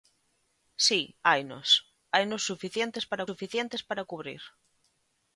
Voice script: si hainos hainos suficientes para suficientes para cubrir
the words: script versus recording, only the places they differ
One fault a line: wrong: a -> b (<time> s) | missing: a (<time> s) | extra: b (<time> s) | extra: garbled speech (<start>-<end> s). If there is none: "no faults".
no faults